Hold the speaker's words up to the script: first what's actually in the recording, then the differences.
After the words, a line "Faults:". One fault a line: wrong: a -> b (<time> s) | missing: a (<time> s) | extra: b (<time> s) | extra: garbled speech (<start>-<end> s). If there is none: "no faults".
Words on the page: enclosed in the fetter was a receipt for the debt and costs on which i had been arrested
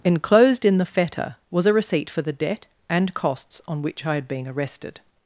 enclosed in the fetter was a receipt for the debt and costs on which i had been arrested
Faults:
no faults